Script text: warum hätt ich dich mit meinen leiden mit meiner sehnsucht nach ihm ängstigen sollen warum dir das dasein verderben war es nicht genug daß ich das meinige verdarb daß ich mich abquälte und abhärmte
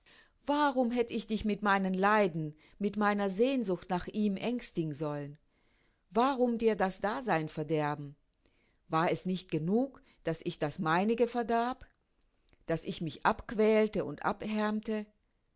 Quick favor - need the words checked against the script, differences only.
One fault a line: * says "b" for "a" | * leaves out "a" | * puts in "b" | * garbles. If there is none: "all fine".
all fine